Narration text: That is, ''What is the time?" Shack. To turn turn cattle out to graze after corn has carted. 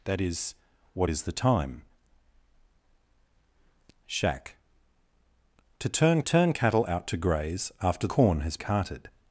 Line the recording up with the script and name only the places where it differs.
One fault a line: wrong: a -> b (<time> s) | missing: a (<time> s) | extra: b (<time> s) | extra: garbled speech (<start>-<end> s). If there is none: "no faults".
no faults